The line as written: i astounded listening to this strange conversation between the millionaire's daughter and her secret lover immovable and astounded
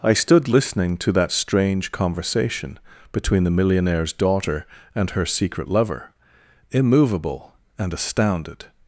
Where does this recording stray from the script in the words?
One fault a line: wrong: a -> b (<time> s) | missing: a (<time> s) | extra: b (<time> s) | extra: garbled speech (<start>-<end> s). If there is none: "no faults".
wrong: astounded -> stood (0.1 s)
wrong: this -> that (1.1 s)